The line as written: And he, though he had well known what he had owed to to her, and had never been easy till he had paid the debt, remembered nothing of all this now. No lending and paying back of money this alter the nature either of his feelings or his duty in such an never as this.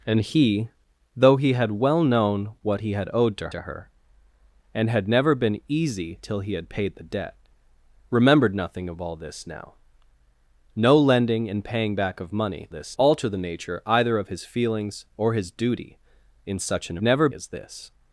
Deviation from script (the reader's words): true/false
false